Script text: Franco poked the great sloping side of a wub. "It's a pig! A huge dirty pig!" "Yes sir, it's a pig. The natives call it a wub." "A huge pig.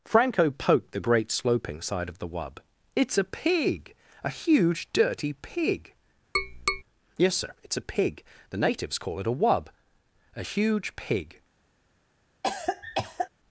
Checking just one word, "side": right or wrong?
right